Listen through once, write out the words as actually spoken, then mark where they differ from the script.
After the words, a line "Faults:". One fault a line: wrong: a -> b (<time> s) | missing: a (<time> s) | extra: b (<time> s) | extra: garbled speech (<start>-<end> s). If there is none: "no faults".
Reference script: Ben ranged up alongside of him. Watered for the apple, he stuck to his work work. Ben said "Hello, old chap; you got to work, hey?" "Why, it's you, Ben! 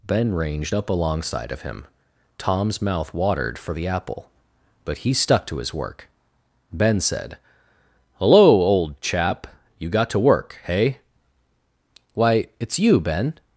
Ben ranged up alongside of him. Tom's mouth watered for the apple, but he stuck to his work. Ben said "Hello, old chap; you got to work, hey?" "Why, it's you, Ben!
Faults:
extra: Tom's mouth (2.4 s)
extra: but (4.8 s)
missing: work (6.1 s)